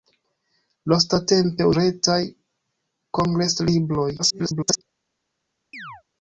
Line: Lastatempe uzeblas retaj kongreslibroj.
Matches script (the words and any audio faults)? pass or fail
fail